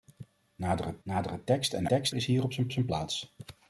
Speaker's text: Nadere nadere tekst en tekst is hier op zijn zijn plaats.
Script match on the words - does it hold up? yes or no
yes